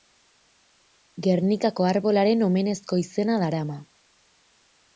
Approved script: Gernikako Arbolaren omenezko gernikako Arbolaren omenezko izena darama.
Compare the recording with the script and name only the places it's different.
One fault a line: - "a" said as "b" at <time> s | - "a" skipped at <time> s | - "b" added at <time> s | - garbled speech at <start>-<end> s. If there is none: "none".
- "gernikako Arbolaren omenezko" skipped at 3.0 s